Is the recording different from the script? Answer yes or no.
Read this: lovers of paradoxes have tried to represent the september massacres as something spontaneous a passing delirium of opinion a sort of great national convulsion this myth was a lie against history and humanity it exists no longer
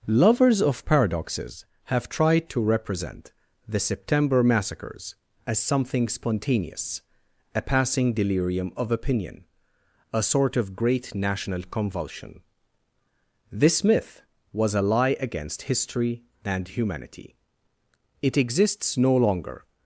no